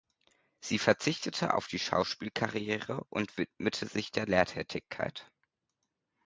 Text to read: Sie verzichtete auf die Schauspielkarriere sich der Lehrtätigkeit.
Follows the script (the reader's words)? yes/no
no